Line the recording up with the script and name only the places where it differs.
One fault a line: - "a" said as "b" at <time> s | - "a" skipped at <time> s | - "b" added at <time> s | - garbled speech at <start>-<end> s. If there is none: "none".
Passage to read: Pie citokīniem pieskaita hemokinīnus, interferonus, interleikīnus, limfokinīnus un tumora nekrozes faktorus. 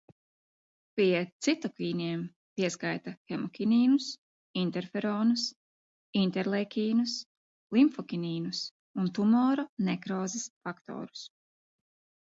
none